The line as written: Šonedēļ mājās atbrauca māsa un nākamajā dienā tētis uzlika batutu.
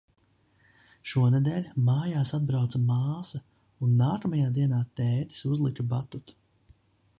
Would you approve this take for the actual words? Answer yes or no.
yes